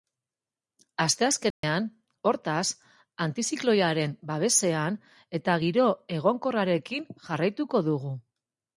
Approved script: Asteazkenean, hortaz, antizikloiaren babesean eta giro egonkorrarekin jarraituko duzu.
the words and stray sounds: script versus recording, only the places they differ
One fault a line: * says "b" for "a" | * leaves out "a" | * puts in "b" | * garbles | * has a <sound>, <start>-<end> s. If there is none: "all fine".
* has a dropout, 1.5-1.6 s
* says "dugu" for "duzu"